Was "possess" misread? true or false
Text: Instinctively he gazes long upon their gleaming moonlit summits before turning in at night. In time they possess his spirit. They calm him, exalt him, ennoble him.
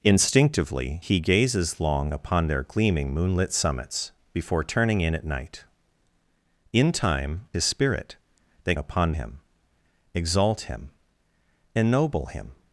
true